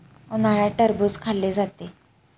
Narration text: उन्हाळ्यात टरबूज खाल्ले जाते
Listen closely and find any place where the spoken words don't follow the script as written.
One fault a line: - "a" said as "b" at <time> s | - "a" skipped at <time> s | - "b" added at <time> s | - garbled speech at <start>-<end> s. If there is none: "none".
none